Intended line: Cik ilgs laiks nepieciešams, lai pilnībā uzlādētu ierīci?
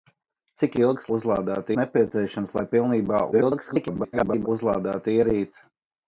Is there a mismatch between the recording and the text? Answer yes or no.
yes